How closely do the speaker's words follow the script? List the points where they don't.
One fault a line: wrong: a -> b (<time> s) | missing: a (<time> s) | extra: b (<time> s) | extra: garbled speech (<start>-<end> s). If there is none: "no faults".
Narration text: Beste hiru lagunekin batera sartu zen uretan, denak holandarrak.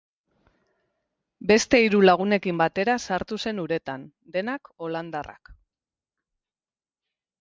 no faults